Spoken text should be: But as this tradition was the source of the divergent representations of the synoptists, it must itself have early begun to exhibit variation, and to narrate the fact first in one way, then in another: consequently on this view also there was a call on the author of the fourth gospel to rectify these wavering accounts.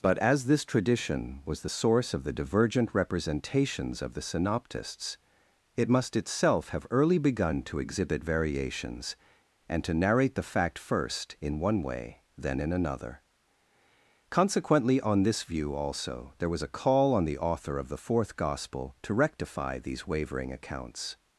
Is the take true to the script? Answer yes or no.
no